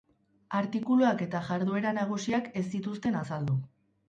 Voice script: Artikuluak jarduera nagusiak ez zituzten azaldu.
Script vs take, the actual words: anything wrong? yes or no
yes